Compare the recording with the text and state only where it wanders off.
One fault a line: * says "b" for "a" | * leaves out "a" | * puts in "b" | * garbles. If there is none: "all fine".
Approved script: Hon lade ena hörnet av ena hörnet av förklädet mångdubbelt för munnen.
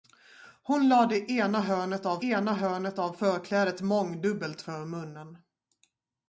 all fine